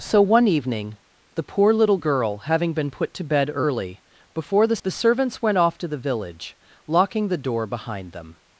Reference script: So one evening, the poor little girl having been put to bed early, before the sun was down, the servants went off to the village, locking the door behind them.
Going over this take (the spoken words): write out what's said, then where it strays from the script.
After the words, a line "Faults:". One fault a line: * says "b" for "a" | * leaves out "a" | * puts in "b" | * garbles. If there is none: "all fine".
So one evening, the poor little girl having been put to bed early, before the the servants went off to the village, locking the door behind them.
Faults:
* leaves out "sun was down"